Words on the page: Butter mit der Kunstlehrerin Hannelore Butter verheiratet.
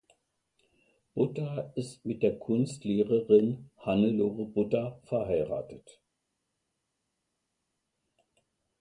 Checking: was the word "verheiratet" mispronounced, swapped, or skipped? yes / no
no